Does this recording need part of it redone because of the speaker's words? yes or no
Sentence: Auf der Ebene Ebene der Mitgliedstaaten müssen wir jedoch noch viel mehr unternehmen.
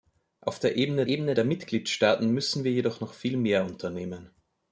no